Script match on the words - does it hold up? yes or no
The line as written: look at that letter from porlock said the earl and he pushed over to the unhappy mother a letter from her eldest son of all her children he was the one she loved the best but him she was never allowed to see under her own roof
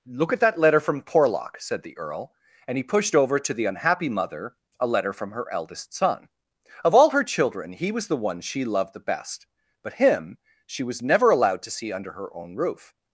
yes